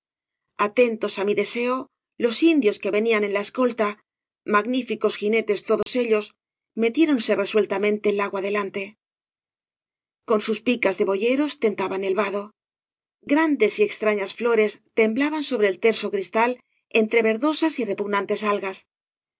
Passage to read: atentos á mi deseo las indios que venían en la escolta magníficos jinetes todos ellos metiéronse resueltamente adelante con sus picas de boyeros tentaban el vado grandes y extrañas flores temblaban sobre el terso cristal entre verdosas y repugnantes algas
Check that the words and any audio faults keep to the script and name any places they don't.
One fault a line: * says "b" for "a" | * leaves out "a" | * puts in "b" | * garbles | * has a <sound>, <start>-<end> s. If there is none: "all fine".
* says "los" for "las"
* has a dropout, 5.8-5.9 s
* puts in "lago"